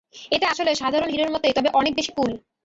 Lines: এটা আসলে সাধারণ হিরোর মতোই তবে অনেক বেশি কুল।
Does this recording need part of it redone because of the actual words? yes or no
no